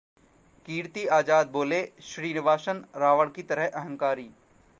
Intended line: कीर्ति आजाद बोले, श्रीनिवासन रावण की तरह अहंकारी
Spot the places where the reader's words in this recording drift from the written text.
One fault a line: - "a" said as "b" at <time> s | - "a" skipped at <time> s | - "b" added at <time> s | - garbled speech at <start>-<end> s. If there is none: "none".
none